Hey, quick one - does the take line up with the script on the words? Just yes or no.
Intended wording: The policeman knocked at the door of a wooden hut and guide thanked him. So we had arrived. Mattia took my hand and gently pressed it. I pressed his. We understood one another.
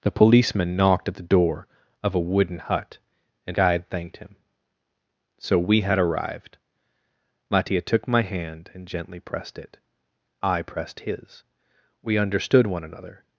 yes